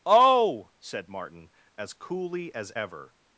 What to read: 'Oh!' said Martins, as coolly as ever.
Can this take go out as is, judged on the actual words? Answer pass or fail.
fail